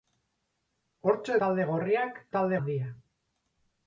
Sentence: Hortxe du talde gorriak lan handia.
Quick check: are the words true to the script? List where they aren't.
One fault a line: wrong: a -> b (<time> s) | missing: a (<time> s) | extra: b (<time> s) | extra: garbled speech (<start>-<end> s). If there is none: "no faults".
missing: du (1.4 s)
wrong: lan -> talde (2.4 s)